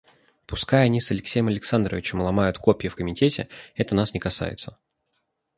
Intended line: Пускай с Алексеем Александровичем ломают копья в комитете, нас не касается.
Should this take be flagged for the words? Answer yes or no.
yes